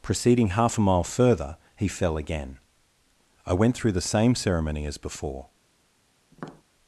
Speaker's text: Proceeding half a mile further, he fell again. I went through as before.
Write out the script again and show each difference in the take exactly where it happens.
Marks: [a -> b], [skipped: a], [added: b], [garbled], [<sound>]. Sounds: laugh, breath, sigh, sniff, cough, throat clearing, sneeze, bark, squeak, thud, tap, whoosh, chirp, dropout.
Proceeding half a mile further, he fell again. I went through [added: the same ceremony] as before. [tap]